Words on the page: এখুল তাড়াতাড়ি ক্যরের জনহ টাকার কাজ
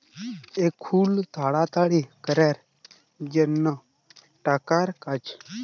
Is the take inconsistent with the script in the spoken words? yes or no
no